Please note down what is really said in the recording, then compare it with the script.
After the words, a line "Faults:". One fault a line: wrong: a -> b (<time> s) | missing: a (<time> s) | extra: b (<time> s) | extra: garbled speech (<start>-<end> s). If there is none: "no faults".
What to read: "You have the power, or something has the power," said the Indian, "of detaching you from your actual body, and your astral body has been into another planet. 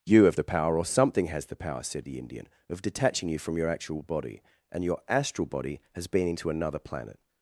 "You have the power, or something has the power," said the Indian, "of detaching you from your actual body, and your astral body has been into another planet.
Faults:
no faults